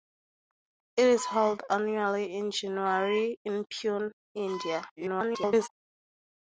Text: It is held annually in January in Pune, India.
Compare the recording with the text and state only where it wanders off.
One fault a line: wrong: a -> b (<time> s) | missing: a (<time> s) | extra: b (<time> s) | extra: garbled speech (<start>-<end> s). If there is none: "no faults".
extra: garbled speech (5.0-5.7 s)